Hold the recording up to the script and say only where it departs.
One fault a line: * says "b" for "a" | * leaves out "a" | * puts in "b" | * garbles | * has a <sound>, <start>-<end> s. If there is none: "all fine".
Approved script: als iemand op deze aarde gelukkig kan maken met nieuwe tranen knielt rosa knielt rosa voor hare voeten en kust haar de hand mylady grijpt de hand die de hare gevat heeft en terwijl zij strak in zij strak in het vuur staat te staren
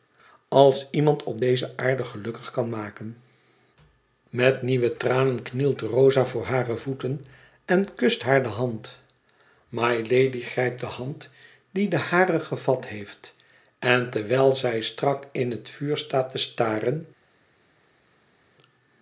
* leaves out "knielt rosa"
* leaves out "zij strak in"